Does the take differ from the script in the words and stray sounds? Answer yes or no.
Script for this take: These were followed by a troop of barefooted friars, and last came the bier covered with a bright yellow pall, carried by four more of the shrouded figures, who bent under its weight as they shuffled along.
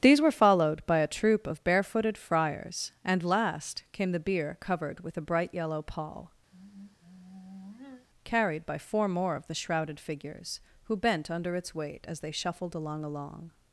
yes